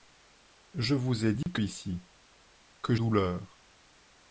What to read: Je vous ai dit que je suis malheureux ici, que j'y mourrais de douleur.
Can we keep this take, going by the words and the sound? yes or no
no